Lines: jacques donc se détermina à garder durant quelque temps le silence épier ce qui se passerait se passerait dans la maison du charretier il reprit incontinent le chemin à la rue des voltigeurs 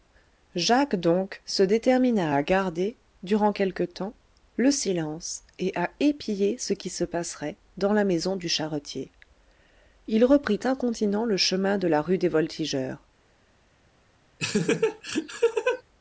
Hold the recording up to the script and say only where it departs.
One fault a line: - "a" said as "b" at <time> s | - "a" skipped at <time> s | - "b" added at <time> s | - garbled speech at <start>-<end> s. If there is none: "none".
- "et à" added at 5.6 s
- "se passerait" skipped at 7.6 s
- "à" said as "de" at 11.8 s